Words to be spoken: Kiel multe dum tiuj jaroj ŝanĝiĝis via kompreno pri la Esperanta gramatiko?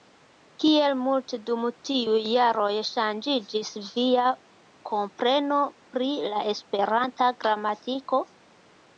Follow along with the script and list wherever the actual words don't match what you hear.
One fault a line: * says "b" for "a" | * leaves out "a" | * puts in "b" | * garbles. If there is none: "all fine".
all fine